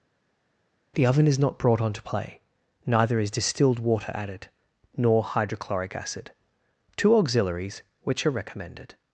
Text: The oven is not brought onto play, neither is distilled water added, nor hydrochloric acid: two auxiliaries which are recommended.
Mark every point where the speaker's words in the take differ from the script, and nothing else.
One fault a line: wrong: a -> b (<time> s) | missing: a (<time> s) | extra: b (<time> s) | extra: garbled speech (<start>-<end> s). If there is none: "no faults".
no faults